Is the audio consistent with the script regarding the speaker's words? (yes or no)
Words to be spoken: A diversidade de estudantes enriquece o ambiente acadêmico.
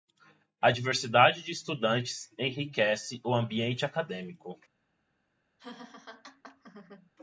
yes